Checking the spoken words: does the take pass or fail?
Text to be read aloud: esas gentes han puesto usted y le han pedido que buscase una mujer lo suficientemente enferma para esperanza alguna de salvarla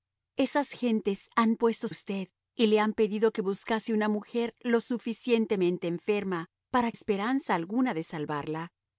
pass